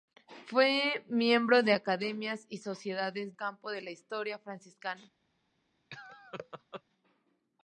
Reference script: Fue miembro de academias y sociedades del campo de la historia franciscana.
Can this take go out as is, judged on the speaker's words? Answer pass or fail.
fail